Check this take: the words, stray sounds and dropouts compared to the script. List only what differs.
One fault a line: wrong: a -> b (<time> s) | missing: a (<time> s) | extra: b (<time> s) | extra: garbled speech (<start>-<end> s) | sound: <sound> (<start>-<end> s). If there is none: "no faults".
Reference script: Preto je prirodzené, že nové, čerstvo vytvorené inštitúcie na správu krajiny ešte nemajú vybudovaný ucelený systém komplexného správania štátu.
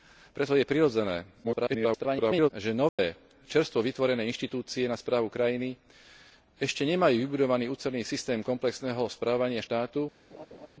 extra: garbled speech (1.4-2.5 s)
sound: dropout (2.9-3.0 s)
sound: laugh (10.3-10.7 s)